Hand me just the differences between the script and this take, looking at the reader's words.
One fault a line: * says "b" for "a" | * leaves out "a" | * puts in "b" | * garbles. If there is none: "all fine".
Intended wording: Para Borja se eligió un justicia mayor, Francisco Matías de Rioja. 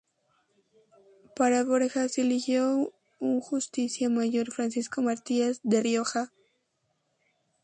all fine